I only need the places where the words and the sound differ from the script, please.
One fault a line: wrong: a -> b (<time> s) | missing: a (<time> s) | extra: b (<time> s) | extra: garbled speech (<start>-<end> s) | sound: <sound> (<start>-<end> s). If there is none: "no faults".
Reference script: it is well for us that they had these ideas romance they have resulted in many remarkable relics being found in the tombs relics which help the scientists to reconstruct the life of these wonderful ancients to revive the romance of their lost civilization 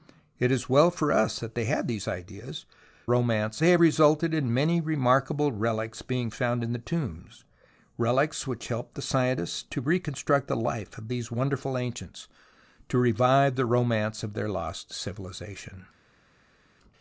no faults